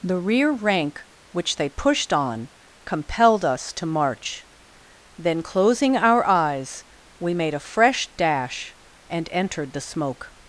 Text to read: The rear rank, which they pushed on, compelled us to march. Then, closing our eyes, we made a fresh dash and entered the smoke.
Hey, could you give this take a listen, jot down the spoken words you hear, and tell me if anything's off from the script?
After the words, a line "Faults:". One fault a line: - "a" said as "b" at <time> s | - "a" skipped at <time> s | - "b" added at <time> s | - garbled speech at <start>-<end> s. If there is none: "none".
The rear rank, which they pushed on, compelled us to march. Then, closing our eyes, we made a fresh dash and entered the smoke.
Faults:
none